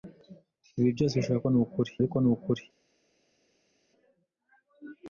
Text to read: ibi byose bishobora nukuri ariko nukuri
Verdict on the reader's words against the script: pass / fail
pass